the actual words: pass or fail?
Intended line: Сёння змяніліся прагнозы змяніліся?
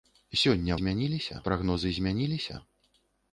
pass